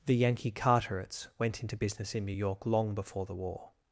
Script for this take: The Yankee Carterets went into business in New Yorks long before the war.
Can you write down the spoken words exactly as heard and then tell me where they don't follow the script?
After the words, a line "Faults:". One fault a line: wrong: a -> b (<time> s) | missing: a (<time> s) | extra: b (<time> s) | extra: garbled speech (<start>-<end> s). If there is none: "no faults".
The Yankee Carterets went into business in New York long before the war.
Faults:
wrong: Yorks -> York (2.3 s)